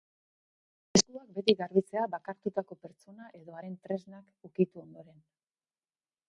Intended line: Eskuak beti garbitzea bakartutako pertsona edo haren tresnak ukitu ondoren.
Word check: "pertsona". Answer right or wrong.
right